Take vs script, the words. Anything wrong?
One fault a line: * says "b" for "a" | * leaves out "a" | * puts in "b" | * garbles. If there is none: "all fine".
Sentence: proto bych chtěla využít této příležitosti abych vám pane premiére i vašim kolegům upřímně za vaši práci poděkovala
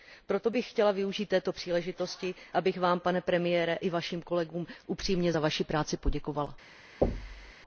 all fine